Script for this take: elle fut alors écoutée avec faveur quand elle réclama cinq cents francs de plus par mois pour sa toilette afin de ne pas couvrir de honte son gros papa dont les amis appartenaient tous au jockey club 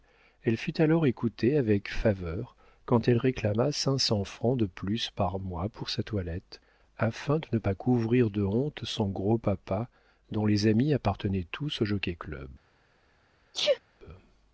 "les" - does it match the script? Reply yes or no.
yes